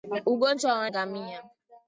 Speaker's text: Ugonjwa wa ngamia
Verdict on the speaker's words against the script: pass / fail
pass